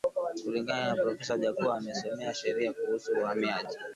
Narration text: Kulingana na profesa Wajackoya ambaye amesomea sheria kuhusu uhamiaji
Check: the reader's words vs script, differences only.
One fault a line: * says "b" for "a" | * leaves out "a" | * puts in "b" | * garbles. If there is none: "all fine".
* leaves out "ambaye"